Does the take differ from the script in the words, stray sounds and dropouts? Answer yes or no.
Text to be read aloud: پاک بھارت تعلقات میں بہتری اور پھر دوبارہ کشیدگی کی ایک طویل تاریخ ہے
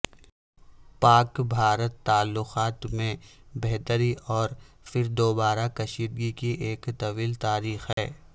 yes